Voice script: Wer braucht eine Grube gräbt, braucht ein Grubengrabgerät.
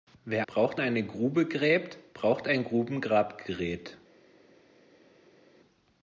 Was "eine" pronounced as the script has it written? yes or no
yes